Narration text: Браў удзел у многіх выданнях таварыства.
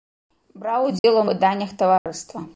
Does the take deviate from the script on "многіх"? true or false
true